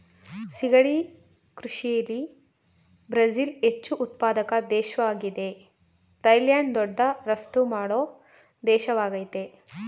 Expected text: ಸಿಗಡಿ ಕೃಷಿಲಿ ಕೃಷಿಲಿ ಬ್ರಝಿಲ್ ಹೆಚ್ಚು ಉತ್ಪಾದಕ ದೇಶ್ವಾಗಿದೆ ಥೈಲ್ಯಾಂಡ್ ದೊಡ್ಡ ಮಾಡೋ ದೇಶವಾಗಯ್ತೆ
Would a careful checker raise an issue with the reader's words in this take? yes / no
yes